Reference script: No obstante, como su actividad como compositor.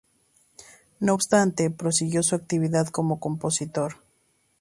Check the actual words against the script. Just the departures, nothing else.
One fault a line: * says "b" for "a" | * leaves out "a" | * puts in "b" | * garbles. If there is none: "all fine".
* says "prosiguió" for "como"